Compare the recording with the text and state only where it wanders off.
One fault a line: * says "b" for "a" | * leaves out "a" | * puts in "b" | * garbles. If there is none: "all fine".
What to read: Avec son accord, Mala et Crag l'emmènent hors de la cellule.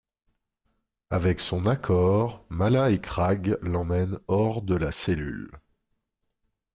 all fine